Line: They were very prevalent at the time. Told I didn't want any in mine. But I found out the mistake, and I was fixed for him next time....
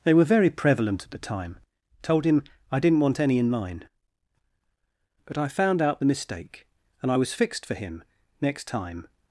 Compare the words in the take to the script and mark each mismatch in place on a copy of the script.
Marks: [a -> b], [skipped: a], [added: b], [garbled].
They were very prevalent at the time. Told [added: him] I didn't want any in mine. But I found out the mistake, and I was fixed for him next time....